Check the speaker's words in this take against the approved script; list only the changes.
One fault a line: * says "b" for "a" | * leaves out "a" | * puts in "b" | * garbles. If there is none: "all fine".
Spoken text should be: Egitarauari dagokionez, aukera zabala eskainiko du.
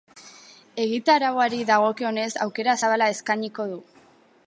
all fine